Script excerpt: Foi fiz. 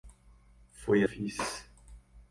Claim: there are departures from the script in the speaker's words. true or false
false